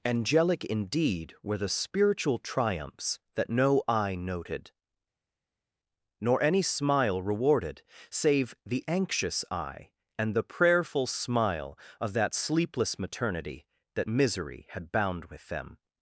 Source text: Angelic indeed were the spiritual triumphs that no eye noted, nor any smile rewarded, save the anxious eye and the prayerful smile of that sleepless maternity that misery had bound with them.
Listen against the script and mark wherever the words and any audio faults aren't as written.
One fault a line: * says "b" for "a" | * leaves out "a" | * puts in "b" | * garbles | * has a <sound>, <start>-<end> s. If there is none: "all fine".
all fine